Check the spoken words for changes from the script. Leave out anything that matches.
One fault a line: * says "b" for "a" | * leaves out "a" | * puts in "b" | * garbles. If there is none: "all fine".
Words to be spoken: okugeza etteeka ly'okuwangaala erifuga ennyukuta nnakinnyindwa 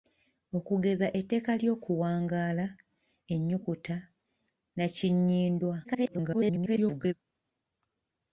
* leaves out "erifuga"
* garbles